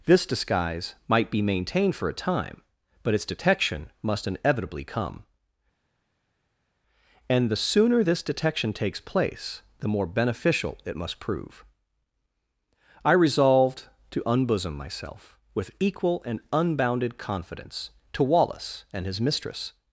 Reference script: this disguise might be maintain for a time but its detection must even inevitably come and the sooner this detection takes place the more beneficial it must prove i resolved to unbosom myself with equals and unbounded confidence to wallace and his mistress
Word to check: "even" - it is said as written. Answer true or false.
false